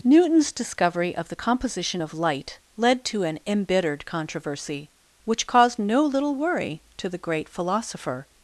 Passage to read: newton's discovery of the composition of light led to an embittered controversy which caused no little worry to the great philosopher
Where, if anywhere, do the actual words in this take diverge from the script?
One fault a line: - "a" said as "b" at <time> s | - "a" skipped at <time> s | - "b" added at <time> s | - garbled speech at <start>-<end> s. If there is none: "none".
none